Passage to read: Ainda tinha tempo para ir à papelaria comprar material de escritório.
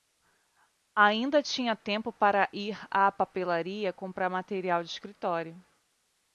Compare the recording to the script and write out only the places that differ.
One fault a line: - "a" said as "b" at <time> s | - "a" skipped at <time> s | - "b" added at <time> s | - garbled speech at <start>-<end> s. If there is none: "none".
none